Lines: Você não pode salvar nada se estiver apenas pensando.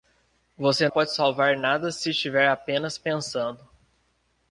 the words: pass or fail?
fail